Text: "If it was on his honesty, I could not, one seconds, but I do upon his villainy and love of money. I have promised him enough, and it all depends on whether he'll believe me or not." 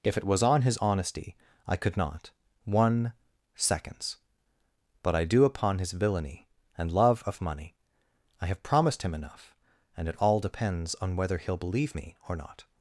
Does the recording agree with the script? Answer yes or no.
yes